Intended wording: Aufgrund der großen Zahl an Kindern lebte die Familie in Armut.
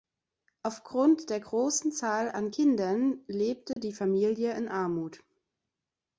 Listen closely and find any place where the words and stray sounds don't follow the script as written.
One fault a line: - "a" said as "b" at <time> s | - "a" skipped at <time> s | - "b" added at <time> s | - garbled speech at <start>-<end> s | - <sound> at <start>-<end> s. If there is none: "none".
- dropout at 3.7-3.8 s